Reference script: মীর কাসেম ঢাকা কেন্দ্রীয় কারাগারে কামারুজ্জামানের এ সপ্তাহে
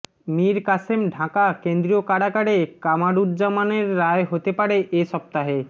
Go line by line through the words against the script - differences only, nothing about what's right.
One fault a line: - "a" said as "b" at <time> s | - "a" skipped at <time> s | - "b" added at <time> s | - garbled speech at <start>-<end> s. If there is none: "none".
- "রায় হতে পারে" added at 4.0 s